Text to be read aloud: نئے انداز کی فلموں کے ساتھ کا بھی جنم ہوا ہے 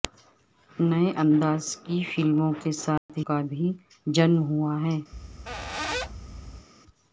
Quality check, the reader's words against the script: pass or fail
pass